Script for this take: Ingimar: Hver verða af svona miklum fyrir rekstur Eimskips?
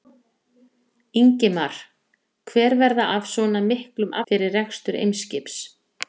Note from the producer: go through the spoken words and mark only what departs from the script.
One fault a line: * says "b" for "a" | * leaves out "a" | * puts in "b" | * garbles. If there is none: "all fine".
all fine